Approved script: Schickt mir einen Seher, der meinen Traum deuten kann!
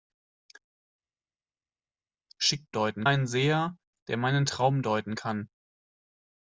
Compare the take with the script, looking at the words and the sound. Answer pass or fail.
fail